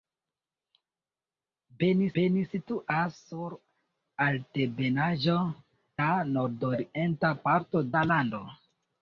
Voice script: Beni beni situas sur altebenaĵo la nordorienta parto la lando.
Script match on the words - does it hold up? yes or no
yes